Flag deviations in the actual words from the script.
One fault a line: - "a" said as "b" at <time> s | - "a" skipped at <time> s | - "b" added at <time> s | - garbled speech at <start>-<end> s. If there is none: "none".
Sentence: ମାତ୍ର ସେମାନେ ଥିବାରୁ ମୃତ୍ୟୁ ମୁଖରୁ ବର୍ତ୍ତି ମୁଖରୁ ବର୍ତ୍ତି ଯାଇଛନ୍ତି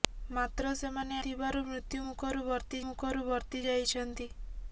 none